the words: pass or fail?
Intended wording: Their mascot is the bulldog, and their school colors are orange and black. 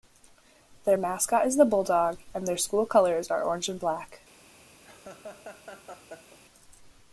pass